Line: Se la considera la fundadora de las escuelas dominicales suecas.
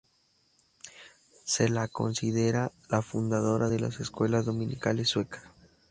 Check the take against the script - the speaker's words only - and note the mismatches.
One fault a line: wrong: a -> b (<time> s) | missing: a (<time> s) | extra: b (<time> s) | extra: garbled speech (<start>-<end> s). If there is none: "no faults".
no faults